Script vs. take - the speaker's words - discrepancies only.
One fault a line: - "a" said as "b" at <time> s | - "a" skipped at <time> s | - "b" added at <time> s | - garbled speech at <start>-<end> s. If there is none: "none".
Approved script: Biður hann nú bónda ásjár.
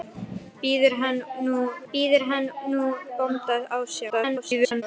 - "biður hann nú" added at 1.9 s
- garbled speech at 4.1-4.8 s